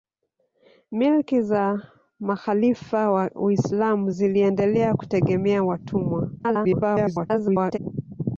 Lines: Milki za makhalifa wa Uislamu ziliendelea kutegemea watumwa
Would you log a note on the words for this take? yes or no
yes